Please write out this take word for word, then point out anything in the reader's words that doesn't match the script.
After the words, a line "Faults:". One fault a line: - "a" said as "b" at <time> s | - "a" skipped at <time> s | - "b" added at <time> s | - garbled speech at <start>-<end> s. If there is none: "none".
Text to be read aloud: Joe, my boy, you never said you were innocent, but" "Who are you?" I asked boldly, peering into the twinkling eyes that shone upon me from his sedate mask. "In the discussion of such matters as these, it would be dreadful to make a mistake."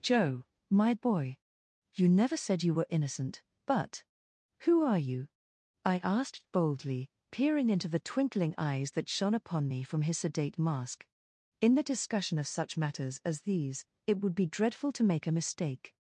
Joe, my boy, you never said you were innocent, but" "Who are you?" I asked boldly, peering into the twinkling eyes that shone upon me from his sedate mask. "In the discussion of such matters as these, it would be dreadful to make a mistake."
Faults:
none